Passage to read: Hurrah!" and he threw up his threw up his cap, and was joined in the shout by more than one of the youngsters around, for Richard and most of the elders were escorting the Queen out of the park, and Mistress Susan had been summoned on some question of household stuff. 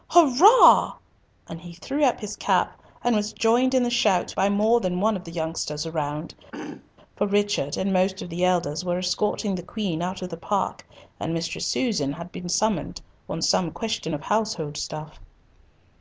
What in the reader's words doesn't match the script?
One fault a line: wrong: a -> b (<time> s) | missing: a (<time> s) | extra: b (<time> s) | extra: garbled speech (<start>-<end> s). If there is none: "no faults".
missing: threw up his (2.4 s)